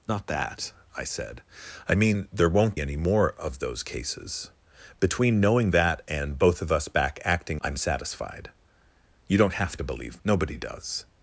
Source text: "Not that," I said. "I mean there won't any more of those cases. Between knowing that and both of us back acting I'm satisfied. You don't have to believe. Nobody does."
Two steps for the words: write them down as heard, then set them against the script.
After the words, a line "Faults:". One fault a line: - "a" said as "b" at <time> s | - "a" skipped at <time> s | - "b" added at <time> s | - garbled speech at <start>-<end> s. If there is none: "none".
"Not that," I said. "I mean there won't any more of those cases. Between knowing that and both of us back acting I'm satisfied. You don't have to believe. Nobody does."
Faults:
none